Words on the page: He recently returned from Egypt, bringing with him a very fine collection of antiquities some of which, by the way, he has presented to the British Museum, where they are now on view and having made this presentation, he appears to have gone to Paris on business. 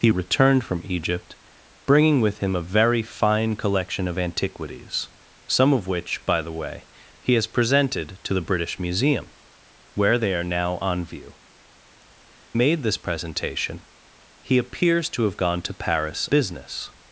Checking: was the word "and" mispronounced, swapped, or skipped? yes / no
yes